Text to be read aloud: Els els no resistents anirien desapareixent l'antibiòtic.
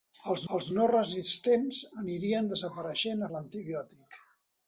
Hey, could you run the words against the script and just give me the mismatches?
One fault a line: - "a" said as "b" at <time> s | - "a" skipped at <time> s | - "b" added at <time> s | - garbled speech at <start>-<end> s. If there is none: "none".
none